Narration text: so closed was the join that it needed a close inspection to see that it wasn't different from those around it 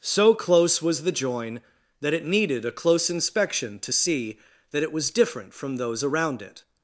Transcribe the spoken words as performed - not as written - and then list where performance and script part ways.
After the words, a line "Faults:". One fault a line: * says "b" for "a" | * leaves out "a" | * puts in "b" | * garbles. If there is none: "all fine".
so close was the join that it needed a close inspection to see that it was different from those around it
Faults:
* says "close" for "closed"
* says "was" for "wasn't"